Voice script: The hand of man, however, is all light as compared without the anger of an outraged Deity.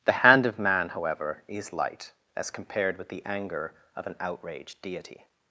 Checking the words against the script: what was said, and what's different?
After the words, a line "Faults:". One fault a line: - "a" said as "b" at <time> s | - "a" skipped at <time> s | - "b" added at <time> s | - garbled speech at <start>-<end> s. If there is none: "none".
The hand of man, however, is light as compared with the anger of an outraged Deity.
Faults:
- "all" skipped at 1.7 s
- "without" said as "with" at 3.0 s